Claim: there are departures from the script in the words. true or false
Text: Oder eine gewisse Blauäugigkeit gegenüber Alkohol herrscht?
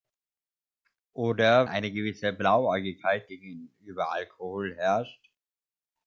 false